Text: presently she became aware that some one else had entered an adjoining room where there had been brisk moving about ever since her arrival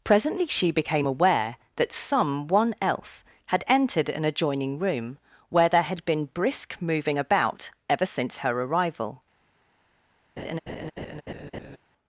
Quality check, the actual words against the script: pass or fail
pass